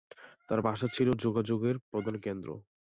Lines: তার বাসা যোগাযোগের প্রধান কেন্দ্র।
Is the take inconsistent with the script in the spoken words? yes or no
yes